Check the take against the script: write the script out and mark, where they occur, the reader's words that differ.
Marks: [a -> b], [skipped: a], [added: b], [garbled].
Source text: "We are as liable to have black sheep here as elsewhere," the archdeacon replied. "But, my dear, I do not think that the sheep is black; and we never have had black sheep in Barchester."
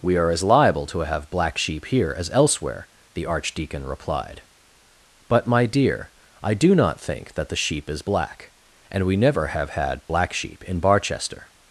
"We are as liable to have black sheep here as elsewhere," the archdeacon replied. "But, my dear, I do not think that the sheep is black; and we never have had black sheep in Barchester."